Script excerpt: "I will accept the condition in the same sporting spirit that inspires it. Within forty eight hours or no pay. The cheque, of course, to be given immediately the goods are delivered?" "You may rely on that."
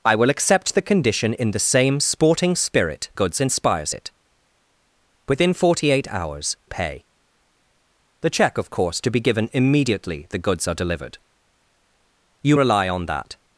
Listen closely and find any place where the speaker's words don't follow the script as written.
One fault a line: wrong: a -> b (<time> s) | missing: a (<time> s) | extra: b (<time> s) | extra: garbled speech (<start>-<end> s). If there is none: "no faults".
wrong: that -> goods (3.1 s)
missing: or no (6.6 s)
missing: may (12.6 s)